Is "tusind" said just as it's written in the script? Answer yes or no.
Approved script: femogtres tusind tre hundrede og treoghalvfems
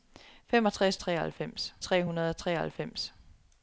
no